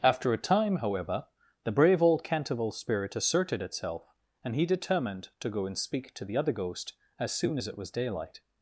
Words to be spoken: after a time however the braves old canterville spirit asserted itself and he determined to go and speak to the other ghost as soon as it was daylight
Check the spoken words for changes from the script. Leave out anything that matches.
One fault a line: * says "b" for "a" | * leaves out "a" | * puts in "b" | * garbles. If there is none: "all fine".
* says "brave" for "braves"